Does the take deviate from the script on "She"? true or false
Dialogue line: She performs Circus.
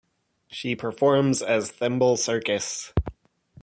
false